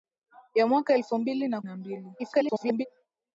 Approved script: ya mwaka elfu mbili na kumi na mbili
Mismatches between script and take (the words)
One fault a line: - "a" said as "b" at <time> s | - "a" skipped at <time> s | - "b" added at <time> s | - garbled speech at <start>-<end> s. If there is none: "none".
- "kumi" skipped at 1.6 s
- garbled speech at 2.2-2.9 s